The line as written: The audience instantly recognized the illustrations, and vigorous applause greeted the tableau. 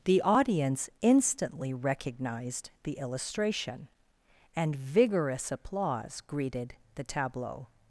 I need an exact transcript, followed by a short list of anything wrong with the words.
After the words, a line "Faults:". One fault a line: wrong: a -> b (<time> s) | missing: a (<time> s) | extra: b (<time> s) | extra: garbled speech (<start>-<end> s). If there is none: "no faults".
The audience instantly recognized the illustration, and vigorous applause greeted the tableau.
Faults:
wrong: illustrations -> illustration (3.0 s)